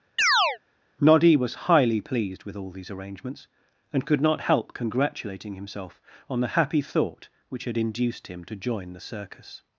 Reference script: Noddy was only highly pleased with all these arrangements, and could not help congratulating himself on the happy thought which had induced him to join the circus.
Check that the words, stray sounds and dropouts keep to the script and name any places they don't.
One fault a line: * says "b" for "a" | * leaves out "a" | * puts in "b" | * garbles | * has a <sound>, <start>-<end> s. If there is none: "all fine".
* has a chirp, 0.2-0.6 s
* leaves out "only"